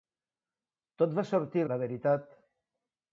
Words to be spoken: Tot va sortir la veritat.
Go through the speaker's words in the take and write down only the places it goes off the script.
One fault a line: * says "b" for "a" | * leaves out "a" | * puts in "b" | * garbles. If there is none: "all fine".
all fine